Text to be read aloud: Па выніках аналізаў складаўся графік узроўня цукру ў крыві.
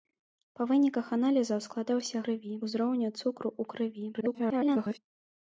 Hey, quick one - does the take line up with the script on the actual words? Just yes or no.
no